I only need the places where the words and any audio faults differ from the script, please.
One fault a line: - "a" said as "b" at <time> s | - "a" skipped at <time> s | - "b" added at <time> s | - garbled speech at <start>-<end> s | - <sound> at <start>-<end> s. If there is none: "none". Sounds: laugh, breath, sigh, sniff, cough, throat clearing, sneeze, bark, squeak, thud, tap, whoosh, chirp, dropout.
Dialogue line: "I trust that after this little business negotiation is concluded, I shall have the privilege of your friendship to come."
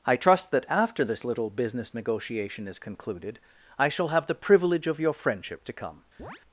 - chirp at 6.2-6.4 s